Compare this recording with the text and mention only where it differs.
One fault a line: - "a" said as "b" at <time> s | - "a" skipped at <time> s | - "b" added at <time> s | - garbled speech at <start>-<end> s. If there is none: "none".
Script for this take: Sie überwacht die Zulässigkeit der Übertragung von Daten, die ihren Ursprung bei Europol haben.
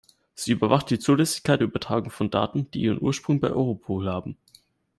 none